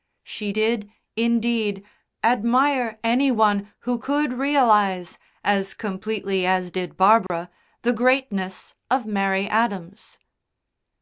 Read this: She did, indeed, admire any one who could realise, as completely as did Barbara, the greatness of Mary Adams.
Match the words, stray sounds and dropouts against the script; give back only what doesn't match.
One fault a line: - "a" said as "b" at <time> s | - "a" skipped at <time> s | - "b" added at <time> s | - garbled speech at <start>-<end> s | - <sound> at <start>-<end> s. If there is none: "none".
- dropout at 7.3-7.3 s